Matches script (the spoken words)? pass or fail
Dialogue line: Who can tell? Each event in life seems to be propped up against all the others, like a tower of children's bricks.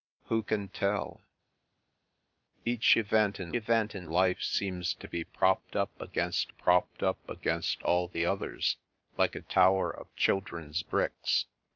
fail